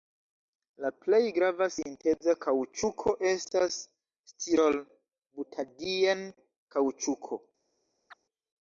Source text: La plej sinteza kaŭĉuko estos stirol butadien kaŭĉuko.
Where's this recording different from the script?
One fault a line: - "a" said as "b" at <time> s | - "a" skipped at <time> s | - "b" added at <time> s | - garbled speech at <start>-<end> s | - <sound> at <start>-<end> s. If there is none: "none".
- "grava" added at 1.4 s
- "estos" said as "estas" at 3.3 s
- chirp at 8.1-8.2 s